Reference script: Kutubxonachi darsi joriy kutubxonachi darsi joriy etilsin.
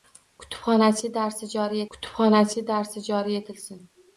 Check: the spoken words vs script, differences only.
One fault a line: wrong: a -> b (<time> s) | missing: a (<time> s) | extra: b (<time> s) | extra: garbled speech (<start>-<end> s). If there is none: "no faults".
no faults